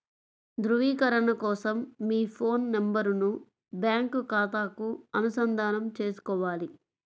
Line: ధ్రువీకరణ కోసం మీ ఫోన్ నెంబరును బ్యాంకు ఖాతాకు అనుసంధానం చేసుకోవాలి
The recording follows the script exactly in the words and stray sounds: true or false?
true